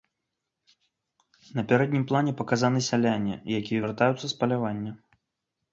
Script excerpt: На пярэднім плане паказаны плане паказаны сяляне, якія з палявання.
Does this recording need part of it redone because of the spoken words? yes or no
yes